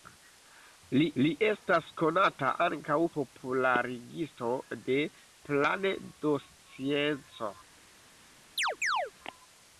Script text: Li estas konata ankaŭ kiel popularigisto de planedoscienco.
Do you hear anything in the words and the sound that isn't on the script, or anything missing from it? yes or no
yes